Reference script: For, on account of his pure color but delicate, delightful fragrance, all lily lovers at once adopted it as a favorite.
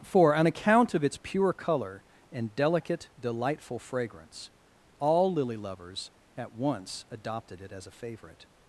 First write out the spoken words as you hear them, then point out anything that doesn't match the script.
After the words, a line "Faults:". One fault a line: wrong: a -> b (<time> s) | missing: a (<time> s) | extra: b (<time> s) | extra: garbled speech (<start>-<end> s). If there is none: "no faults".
For, on account of its pure color and delicate, delightful fragrance, all lily lovers at once adopted it as a favorite.
Faults:
wrong: his -> its (1.0 s)
wrong: but -> and (2.3 s)